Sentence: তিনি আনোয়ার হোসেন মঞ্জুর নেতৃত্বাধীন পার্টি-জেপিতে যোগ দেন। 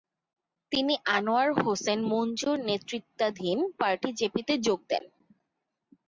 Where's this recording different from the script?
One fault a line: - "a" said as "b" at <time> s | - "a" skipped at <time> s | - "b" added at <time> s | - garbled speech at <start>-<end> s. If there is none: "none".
none